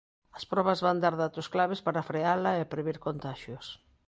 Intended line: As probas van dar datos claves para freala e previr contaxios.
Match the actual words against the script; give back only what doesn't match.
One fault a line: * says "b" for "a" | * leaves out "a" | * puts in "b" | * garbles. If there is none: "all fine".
all fine